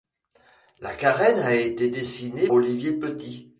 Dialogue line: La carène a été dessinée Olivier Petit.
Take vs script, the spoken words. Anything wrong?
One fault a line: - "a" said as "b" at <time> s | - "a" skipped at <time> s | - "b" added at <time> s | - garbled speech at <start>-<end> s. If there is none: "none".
none